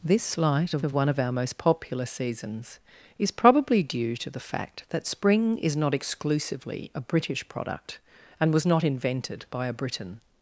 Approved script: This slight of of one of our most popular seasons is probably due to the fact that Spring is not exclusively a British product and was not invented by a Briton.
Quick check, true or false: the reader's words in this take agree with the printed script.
true